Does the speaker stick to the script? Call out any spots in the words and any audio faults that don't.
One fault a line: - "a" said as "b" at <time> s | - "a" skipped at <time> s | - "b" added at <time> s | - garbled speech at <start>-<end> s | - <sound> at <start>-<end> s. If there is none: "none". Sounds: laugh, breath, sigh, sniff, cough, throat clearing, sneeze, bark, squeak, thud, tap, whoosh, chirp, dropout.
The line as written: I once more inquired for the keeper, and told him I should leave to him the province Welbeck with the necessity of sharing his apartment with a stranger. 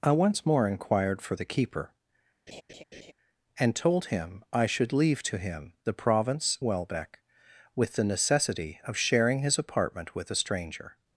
- laugh at 2.5-3.1 s